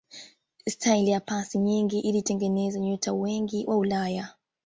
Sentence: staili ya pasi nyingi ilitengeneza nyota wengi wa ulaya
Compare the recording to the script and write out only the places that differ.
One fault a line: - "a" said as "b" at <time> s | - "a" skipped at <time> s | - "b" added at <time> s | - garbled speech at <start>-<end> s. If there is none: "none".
none